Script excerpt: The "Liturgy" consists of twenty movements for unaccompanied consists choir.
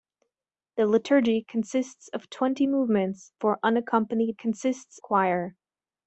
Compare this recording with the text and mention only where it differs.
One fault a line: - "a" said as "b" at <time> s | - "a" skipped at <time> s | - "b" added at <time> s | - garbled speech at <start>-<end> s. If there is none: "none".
none